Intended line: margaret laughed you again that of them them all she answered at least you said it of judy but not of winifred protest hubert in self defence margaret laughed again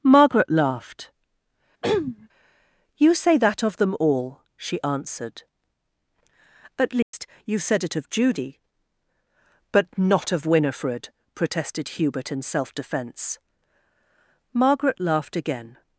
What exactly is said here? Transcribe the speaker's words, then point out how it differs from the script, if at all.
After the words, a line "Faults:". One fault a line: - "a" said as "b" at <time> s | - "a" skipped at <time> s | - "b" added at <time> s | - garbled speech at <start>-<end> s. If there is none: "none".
margaret laughed you say that of them all she answered at least you said it of judy but not of winifred protested hubert in self defence margaret laughed again
Faults:
- "again" said as "say" at 3.1 s
- "them" skipped at 4.0 s
- "protest" said as "protested" at 11.3 s